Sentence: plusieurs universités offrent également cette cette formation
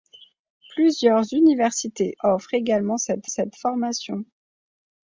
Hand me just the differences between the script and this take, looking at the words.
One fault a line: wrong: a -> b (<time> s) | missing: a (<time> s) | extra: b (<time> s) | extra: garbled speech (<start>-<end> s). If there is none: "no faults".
no faults